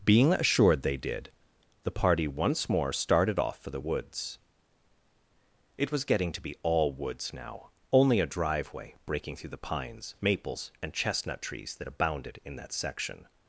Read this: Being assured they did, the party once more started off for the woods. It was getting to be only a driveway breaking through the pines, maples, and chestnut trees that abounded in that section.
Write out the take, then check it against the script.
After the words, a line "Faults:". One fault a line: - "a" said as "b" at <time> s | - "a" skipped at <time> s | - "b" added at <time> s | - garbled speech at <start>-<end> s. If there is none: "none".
Being assured they did, the party once more started off for the woods. It was getting to be all woods now, only a driveway breaking through the pines, maples, and chestnut trees that abounded in that section.
Faults:
- "all woods now" added at 6.6 s